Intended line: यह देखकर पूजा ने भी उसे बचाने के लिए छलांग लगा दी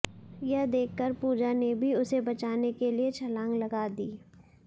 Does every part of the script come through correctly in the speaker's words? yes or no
yes